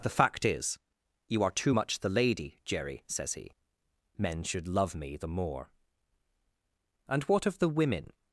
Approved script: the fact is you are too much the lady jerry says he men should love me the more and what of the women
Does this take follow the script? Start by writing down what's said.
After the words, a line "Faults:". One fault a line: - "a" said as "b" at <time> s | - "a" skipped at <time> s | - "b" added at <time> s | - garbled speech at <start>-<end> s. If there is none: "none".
the fact is you are too much the lady jerry says he men should love me the more and what of the women
Faults:
none